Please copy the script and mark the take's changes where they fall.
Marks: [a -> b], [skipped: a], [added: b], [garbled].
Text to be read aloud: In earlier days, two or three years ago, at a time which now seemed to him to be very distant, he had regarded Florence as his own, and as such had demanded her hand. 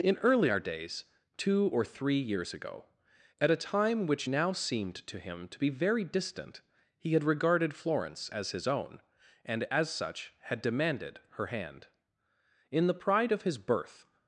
In earlier days, two or three years ago, at a time which now seemed to him to be very distant, he had regarded Florence as his own, and as such had demanded her hand. [added: In the pride of his birth]